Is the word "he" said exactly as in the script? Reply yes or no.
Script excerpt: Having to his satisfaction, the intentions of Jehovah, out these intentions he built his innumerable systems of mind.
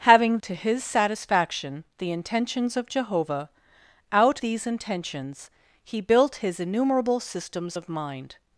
yes